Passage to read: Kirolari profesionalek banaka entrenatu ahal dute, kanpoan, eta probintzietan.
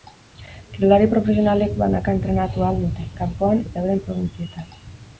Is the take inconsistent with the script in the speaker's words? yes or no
yes